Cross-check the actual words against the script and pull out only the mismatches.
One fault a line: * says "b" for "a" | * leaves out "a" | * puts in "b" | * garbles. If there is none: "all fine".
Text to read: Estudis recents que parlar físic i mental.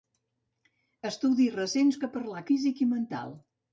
all fine